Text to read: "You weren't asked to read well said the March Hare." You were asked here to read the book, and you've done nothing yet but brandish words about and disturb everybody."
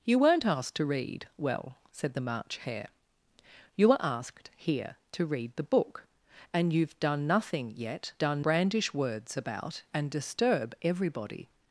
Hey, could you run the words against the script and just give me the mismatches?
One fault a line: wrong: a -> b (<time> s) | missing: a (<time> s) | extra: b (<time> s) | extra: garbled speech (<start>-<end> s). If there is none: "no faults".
wrong: but -> done (8.2 s)